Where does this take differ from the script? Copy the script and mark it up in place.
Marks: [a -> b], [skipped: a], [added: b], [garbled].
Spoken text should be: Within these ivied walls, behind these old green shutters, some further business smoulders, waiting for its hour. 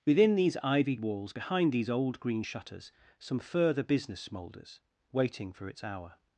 Within these ivied walls, behind these old green shutters, some further business smoulders, waiting for its hour.